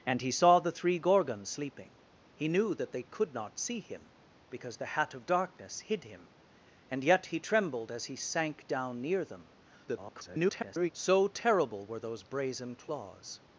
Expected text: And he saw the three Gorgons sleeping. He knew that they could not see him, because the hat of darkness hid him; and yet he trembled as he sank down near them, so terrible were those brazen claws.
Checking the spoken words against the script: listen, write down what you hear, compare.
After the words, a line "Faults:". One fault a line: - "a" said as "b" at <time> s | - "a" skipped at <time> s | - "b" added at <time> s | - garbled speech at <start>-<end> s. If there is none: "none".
And he saw the three Gorgons sleeping. He knew that they could not see him, because the hat of darkness hid him; and yet he trembled as he sank down near them, [garbled] so terrible were those brazen claws.
Faults:
- garbled speech at 9.9-10.9 s